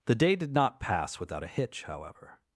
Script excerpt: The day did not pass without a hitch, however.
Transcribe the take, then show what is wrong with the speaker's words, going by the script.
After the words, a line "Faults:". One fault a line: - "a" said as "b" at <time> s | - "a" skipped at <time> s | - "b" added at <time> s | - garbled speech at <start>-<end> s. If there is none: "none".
The day did not pass without a hitch, however.
Faults:
none